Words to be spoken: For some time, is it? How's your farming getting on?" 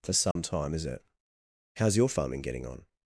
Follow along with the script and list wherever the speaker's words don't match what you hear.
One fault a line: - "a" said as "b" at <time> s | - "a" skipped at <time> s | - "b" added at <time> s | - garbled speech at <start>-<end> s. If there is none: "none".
none